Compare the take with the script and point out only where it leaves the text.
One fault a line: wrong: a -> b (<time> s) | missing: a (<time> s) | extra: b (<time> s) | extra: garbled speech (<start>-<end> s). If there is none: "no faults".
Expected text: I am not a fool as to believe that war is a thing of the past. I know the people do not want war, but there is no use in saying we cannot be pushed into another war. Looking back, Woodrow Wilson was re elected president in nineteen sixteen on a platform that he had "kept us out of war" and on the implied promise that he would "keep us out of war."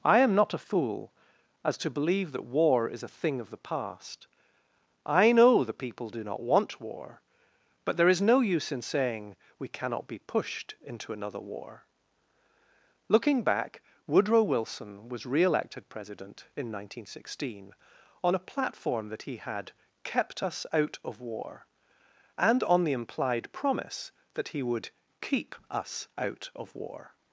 no faults